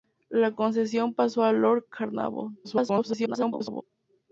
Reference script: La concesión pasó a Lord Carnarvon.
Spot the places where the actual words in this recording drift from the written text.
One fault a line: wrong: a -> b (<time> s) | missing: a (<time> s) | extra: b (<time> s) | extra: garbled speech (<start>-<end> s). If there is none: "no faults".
extra: garbled speech (2.6-3.8 s)